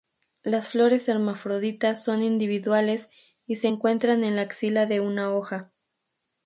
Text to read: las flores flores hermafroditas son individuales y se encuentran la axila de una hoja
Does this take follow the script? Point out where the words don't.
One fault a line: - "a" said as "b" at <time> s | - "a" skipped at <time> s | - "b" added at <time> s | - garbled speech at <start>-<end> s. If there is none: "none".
- "flores" skipped at 1.1 s
- "en" added at 4.2 s